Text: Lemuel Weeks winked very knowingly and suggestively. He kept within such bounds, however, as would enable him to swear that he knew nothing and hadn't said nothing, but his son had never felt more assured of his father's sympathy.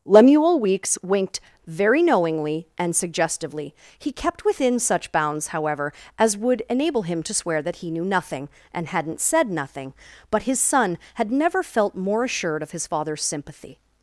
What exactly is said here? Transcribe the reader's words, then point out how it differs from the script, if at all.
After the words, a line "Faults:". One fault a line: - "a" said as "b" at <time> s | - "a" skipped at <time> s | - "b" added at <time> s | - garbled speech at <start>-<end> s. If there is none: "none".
Lemuel Weeks winked very knowingly and suggestively. He kept within such bounds, however, as would enable him to swear that he knew nothing and hadn't said nothing, but his son had never felt more assured of his father's sympathy.
Faults:
none